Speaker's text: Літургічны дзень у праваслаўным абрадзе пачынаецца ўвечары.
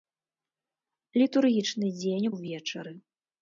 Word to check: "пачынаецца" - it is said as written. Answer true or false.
false